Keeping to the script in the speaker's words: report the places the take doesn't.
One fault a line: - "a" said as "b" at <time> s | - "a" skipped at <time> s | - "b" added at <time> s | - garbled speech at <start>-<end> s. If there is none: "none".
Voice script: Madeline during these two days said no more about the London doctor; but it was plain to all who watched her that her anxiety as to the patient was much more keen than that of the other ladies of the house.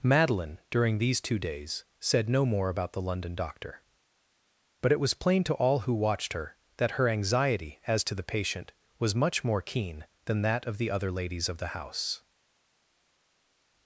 none